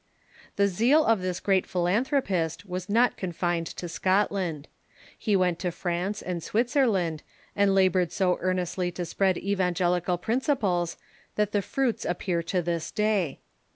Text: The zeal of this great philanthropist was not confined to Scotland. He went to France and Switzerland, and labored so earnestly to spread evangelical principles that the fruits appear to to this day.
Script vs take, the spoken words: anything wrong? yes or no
yes